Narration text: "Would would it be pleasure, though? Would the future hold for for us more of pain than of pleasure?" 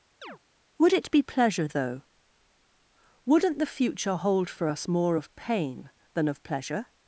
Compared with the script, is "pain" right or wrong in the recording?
right